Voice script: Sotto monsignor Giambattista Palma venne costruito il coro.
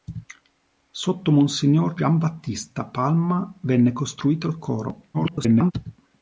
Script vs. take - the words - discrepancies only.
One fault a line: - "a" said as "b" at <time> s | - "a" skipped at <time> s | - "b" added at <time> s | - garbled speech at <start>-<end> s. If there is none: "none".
- garbled speech at 5.1-5.7 s